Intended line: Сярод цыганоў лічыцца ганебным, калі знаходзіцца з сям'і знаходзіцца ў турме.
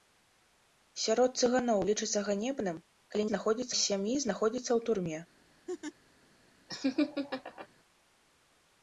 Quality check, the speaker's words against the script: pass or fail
pass